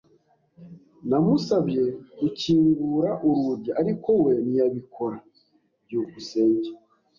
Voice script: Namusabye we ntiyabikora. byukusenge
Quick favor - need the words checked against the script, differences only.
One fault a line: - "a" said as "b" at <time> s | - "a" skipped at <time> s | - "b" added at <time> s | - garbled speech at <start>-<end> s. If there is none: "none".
- "gukingura urugi ariko" added at 2.2 s